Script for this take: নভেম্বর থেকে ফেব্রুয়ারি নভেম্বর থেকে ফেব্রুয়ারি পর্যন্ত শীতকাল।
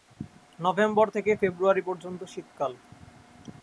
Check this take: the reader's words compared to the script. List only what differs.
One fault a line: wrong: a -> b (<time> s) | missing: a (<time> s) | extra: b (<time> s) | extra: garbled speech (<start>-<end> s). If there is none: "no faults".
missing: নভেম্বর থেকে ফেব্রুয়ারি (1.8 s)